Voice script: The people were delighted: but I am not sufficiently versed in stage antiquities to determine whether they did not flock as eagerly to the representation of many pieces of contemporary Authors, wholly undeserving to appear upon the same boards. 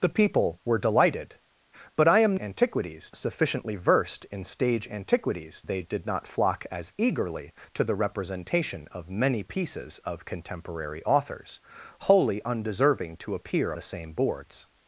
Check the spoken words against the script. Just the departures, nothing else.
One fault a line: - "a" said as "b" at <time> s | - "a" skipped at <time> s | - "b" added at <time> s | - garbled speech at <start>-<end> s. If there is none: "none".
- "not" said as "antiquities" at 2.4 s
- "to determine whether" skipped at 5.6 s
- "upon" skipped at 13.7 s